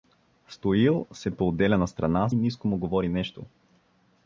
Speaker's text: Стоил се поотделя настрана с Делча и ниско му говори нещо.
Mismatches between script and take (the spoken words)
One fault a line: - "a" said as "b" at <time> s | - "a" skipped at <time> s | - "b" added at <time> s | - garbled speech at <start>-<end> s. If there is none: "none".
- "с Делча и" skipped at 2.3 s